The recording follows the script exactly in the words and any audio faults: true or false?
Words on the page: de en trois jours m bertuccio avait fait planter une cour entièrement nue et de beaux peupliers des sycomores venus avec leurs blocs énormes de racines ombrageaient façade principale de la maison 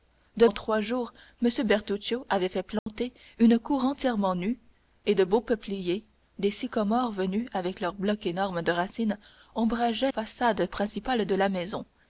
false